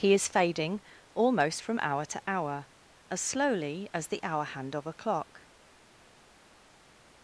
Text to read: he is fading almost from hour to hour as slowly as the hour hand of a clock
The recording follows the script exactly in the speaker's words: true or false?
true